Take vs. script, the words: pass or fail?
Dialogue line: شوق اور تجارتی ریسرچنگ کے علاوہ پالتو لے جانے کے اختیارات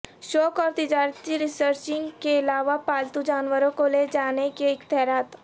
fail